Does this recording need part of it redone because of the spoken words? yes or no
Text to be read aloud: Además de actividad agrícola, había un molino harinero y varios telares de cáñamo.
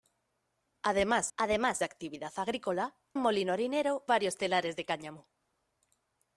yes